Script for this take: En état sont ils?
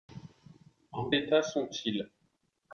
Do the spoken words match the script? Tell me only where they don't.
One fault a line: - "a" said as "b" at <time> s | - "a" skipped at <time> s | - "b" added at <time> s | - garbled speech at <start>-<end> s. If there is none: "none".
none